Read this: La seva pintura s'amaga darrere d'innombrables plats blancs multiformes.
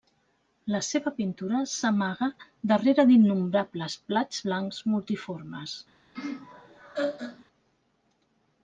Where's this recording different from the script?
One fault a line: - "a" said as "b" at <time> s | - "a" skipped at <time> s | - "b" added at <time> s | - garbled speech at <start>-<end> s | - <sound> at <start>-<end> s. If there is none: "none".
- laugh at 6.1-7.4 s